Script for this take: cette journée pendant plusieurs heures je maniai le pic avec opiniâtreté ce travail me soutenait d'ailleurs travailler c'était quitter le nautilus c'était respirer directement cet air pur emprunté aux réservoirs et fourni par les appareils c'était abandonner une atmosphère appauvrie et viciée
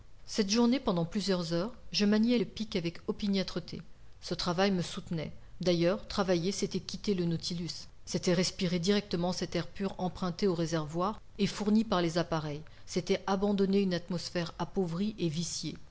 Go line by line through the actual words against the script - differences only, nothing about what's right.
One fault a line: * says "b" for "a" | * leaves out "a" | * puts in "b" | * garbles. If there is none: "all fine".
all fine